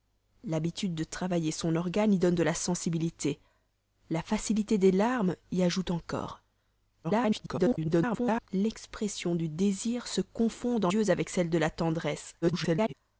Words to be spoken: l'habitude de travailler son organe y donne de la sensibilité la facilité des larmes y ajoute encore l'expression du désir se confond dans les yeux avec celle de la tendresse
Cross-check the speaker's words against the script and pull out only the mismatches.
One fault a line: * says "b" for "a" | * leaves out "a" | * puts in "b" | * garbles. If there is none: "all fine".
* garbles
* leaves out "les"
* garbles